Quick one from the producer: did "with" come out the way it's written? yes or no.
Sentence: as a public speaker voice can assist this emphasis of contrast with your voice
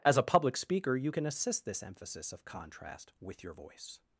yes